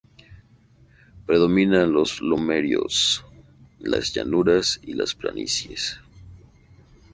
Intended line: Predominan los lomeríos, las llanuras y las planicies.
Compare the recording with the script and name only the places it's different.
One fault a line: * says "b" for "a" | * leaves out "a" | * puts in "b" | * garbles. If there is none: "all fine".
all fine